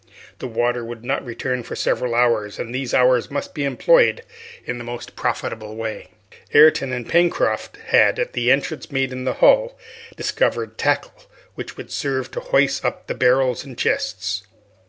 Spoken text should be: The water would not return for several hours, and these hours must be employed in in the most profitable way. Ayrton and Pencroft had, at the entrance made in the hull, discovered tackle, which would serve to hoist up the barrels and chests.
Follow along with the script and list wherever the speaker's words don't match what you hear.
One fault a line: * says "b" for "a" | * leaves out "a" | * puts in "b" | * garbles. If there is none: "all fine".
* leaves out "in"